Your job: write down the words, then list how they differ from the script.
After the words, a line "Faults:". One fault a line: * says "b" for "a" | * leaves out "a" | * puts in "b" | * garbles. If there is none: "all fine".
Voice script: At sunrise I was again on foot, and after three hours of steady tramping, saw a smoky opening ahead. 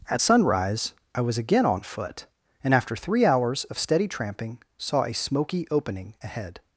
At sunrise I was again on foot, and after three hours of steady tramping, saw a smoky opening ahead.
Faults:
all fine